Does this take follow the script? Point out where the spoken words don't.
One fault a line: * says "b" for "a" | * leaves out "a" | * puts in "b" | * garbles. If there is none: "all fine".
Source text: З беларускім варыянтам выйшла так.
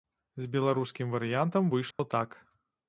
all fine